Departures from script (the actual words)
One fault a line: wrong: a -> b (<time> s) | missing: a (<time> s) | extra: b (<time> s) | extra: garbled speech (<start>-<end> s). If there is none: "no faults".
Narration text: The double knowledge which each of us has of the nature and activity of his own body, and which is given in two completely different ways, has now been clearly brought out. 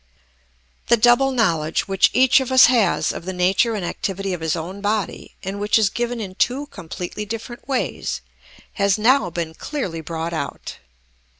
no faults